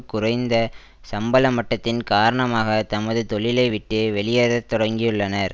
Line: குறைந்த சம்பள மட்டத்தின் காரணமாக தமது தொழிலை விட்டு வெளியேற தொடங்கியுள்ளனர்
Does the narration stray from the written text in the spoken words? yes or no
no